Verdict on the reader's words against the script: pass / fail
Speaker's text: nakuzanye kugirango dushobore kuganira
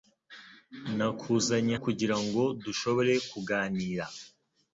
pass